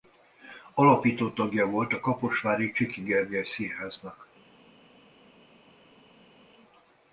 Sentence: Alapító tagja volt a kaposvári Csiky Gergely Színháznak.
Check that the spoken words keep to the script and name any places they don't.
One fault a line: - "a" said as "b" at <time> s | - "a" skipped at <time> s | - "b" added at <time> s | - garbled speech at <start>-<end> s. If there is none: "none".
none